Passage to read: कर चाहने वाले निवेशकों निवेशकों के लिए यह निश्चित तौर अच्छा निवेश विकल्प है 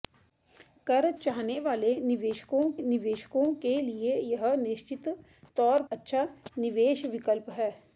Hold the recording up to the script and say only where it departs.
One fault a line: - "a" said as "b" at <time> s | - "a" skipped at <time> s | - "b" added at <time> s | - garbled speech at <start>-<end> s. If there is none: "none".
none